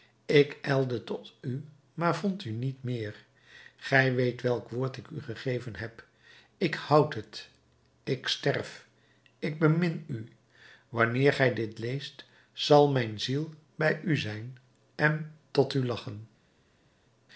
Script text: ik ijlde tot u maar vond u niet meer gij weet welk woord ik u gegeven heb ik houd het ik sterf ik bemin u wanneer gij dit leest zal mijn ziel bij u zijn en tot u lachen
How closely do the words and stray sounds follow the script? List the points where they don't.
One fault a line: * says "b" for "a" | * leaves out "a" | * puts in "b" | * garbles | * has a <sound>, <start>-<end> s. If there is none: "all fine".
all fine